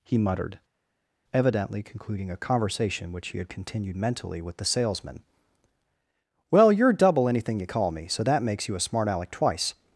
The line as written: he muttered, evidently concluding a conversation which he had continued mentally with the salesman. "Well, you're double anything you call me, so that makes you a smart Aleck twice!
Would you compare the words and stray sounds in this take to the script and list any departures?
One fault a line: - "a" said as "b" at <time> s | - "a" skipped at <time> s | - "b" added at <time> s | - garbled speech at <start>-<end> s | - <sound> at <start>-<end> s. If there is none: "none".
none